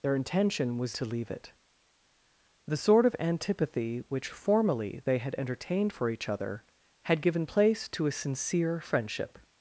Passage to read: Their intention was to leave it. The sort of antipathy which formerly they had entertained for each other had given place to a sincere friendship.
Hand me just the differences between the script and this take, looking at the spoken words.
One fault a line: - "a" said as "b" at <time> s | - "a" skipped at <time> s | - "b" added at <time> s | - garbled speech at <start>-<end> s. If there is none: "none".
none